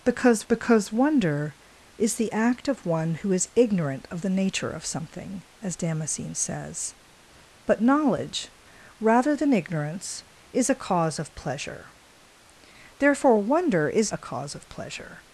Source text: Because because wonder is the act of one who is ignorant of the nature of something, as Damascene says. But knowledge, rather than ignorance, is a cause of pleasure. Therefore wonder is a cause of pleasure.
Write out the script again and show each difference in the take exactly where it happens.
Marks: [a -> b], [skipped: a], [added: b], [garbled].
Because because wonder is the act of one who is ignorant of the nature of something, as Damascene says. But knowledge, rather than ignorance, is a cause of pleasure. Therefore wonder is a cause of pleasure.